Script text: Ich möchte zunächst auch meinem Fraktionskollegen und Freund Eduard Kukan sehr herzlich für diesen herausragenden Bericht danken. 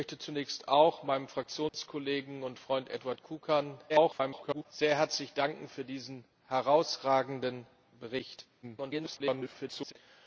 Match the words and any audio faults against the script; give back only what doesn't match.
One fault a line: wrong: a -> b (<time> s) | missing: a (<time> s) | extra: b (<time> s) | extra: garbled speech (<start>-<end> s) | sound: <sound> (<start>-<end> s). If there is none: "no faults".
sound: dropout (1.7-1.7 s)
extra: garbled speech (3.9-4.7 s)
extra: garbled speech (8.6-9.9 s)